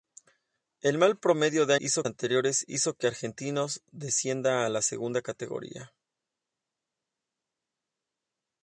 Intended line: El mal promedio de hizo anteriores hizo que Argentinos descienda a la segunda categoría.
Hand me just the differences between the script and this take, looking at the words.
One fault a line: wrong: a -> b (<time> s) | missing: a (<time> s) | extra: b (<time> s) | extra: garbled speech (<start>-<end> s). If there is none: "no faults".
no faults